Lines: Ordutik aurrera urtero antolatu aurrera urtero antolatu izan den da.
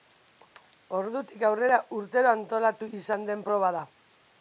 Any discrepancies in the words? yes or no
yes